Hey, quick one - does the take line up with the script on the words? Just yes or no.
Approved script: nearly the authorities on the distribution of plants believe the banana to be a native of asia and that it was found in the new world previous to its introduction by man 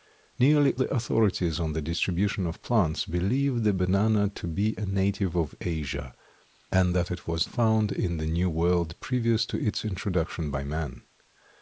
yes